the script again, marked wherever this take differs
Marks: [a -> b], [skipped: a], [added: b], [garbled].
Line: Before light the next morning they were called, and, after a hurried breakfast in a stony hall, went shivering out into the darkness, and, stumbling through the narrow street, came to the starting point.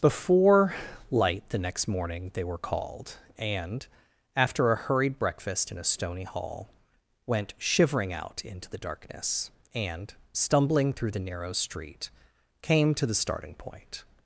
Before light the next morning they were called, and, after a hurried breakfast in a stony hall, went shivering out into the darkness, and, stumbling through the narrow street, came to the starting point.